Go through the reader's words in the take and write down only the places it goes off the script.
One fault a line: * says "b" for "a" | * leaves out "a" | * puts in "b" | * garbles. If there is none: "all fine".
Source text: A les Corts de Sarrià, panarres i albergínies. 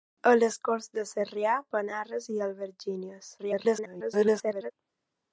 * garbles